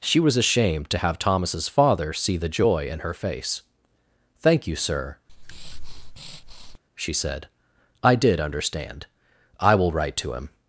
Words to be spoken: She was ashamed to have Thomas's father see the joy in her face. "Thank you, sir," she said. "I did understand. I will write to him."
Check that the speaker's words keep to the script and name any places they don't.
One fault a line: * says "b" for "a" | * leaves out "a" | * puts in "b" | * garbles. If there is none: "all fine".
all fine